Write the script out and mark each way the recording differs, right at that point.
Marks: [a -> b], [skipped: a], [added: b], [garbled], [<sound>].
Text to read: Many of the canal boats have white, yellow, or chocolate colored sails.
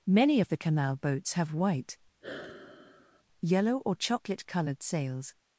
Many of the canal boats have white, [sigh] yellow, or chocolate colored sails.